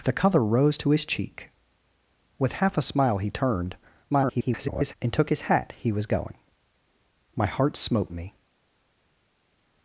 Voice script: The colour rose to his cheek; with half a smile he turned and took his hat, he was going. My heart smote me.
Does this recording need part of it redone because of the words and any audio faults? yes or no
yes